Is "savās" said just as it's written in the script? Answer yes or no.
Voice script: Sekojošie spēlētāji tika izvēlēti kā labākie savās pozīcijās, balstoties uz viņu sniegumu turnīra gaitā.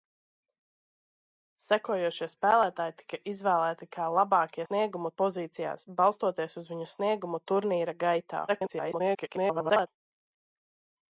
no